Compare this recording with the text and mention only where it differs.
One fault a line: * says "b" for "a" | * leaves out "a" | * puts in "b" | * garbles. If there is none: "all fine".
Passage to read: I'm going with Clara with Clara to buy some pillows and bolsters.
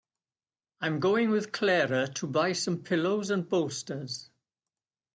* leaves out "with Clara"